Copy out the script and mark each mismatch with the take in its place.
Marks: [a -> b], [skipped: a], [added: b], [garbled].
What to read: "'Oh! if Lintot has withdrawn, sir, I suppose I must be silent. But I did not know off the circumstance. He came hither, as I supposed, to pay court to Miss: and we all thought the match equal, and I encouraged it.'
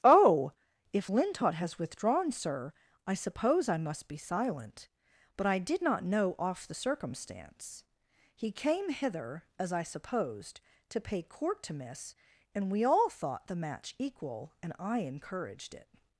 "'Oh! if Lintot has withdrawn, sir, I suppose I must be silent. But I did not know off the circumstance. He came hither, as I supposed, to pay court to Miss: and we all thought the match equal, and I encouraged it.'